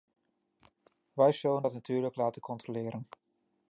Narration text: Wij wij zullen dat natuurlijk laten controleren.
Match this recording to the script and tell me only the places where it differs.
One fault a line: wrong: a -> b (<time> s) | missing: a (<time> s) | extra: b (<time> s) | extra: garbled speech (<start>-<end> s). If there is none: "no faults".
missing: wij (1.3 s)